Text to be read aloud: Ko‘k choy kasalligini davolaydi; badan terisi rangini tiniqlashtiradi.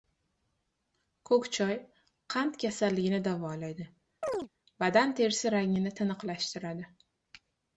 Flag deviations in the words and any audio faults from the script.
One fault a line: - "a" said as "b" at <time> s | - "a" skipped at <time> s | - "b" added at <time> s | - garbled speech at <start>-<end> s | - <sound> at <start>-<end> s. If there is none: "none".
- "qand" added at 2.3 s
- chirp at 4.2-4.5 s